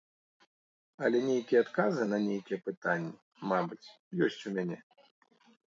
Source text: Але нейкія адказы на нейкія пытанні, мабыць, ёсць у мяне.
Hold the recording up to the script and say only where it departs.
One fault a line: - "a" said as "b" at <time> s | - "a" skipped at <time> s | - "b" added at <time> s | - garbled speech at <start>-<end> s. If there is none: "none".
none